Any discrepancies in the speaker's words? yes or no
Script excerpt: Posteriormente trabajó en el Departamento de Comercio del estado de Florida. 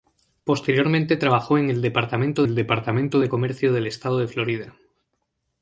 yes